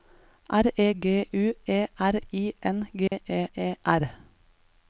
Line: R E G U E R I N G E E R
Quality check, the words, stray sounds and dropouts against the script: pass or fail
fail